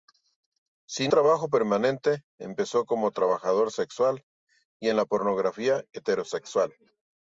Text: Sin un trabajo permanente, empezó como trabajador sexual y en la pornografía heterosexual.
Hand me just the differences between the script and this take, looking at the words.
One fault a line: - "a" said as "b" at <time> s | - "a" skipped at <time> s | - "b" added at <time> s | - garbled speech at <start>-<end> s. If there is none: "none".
- "un" skipped at 1.1 s